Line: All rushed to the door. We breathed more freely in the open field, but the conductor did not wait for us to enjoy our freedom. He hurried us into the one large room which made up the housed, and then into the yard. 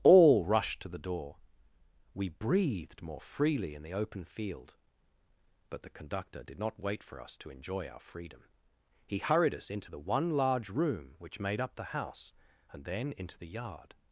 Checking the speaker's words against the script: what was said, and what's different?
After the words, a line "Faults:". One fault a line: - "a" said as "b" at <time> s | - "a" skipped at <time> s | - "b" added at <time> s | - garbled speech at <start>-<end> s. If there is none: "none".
All rushed to the door. We breathed more freely in the open field, but the conductor did not wait for us to enjoy our freedom. He hurried us into the one large room which made up the house, and then into the yard.
Faults:
- "housed" said as "house" at 11.8 s